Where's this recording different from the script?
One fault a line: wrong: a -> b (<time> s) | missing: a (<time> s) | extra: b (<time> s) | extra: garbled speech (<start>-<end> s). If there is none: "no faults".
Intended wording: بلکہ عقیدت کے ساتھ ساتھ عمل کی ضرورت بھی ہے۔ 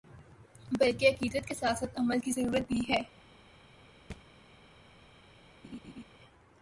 no faults